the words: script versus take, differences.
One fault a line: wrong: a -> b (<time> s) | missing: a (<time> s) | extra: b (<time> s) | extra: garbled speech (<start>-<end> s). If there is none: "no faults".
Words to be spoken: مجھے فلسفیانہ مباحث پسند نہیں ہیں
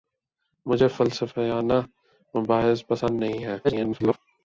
extra: garbled speech (3.6-4.2 s)